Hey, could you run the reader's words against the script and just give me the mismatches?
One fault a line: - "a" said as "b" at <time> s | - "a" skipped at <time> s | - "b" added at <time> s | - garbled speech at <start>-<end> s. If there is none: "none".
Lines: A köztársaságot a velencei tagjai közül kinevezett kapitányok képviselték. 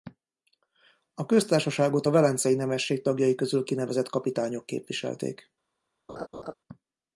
- "nemesség" added at 2.5 s